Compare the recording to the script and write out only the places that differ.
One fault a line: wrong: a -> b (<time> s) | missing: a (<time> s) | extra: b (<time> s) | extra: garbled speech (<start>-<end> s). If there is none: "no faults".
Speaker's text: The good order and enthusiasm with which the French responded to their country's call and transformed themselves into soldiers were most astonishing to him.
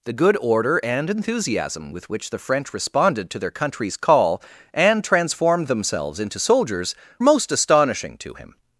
missing: were (7.0 s)